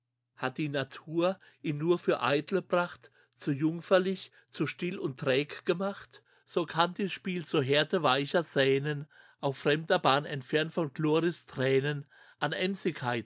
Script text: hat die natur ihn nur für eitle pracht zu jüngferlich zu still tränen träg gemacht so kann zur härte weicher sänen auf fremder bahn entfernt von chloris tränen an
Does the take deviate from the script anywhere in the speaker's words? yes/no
yes